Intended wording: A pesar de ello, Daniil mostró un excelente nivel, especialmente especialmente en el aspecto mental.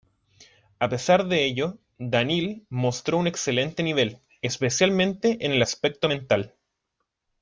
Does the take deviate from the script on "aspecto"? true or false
false